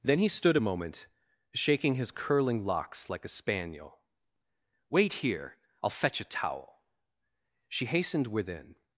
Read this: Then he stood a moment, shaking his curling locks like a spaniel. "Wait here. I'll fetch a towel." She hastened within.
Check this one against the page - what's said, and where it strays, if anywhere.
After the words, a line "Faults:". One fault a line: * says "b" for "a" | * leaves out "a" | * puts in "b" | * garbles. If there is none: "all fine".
Then he stood a moment, shaking his curling locks like a spaniel. "Wait here. I'll fetch a towel." She hastened within.
Faults:
all fine